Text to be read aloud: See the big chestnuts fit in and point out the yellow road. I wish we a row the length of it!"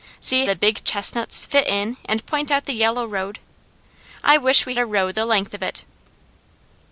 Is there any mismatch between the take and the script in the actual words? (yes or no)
no